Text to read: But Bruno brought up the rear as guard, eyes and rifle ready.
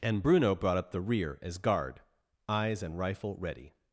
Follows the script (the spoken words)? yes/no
no